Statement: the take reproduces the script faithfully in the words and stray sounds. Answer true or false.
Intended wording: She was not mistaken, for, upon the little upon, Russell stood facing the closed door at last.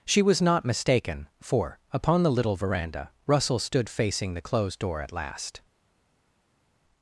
false